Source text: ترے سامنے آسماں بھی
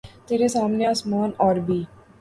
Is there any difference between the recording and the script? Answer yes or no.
yes